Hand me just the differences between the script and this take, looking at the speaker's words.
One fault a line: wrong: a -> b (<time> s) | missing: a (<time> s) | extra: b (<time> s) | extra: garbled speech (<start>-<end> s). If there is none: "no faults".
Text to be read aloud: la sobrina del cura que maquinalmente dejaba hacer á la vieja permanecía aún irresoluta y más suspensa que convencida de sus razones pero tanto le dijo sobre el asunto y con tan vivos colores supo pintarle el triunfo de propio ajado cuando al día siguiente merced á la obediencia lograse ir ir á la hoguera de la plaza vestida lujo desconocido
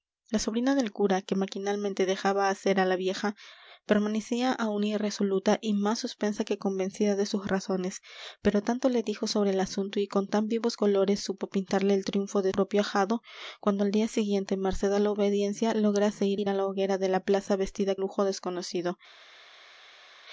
no faults